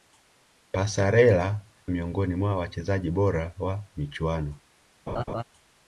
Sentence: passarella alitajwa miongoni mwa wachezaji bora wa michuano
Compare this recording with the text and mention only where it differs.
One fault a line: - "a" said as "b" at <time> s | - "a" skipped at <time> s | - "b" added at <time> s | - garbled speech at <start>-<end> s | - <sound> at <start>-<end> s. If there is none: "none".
- "alitajwa" skipped at 1.6 s
- laugh at 5.1-5.4 s